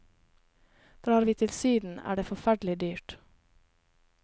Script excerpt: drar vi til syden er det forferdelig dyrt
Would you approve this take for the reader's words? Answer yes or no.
yes